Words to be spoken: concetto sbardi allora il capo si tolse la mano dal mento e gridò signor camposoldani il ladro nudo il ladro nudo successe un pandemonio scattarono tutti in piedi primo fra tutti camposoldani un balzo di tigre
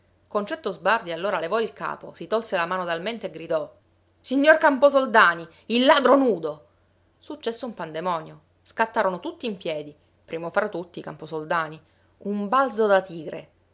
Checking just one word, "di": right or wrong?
wrong